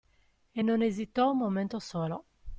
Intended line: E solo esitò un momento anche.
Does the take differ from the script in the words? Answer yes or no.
yes